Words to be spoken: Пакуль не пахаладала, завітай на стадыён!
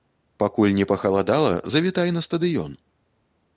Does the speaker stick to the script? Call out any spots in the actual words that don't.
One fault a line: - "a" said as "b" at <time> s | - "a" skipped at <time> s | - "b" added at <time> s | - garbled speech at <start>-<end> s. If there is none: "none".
none